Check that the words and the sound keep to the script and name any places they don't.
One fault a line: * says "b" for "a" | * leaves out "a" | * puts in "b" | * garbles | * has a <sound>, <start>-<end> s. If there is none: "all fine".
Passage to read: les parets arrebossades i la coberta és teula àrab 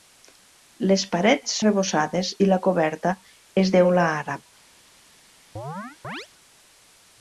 * has a chirp, 5.6-6.3 s